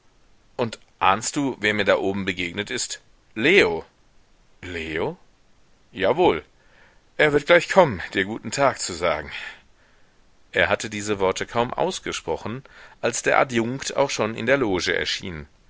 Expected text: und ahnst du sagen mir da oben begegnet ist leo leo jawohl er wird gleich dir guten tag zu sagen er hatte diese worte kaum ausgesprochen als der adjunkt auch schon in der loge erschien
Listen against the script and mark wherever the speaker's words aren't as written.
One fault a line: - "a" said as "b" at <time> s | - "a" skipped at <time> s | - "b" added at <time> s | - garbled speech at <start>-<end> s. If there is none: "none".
- "sagen" said as "wer" at 1.6 s
- "kommen" added at 7.7 s